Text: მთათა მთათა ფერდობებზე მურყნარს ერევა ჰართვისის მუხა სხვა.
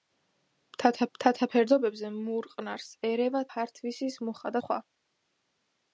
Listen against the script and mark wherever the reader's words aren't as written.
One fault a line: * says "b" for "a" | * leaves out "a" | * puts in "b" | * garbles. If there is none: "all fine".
all fine